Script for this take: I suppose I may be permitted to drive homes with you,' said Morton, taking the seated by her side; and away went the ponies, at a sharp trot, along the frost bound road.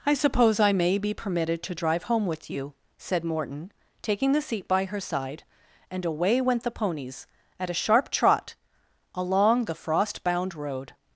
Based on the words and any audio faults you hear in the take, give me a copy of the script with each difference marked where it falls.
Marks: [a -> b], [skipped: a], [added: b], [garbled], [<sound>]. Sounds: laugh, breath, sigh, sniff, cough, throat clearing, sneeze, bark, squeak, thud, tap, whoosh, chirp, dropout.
I suppose I may be permitted to drive [homes -> home] with you,' said Morton, taking the [seated -> seat] by her side; and away went the ponies, at a sharp trot, along the frost bound road.